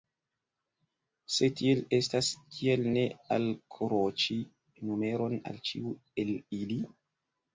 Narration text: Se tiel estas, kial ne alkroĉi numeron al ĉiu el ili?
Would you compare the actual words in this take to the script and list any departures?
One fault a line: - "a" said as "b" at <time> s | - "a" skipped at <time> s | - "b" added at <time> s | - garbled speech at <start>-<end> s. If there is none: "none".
none